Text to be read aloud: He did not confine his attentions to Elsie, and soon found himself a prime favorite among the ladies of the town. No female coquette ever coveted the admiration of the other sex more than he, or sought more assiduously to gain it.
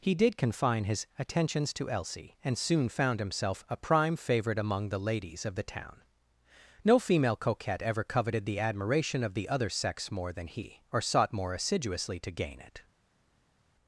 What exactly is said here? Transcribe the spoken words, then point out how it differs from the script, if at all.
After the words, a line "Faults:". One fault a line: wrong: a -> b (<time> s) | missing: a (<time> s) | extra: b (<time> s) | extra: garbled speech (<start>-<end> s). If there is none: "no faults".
He did confine his attentions to Elsie, and soon found himself a prime favorite among the ladies of the town. No female coquette ever coveted the admiration of the other sex more than he, or sought more assiduously to gain it.
Faults:
missing: not (0.3 s)